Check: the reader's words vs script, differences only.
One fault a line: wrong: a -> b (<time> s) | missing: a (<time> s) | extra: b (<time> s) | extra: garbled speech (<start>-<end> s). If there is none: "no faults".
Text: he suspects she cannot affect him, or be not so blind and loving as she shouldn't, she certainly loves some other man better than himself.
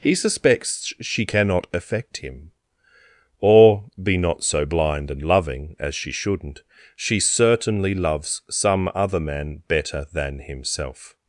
no faults